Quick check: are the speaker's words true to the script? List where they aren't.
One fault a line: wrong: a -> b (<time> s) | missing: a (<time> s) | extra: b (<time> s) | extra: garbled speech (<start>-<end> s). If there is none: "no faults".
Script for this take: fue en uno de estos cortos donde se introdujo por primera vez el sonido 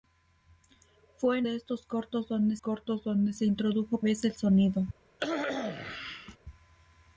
missing: uno (1.5 s)
extra: cortos donde (2.6 s)
missing: por primera (4.0 s)